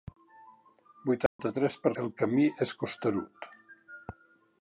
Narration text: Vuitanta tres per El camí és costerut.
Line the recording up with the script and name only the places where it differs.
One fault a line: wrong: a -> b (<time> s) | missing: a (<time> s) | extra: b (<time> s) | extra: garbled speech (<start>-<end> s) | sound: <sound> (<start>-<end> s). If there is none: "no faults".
sound: dropout (1.3-1.4 s)